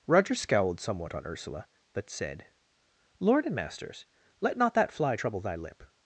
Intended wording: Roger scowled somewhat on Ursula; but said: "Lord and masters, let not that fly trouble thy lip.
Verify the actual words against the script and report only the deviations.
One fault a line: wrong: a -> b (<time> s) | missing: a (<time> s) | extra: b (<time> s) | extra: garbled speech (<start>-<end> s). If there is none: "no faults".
no faults